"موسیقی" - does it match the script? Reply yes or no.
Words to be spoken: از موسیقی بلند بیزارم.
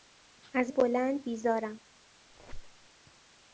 no